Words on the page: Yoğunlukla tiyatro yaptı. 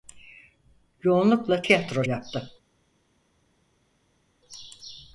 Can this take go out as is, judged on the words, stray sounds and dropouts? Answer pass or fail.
pass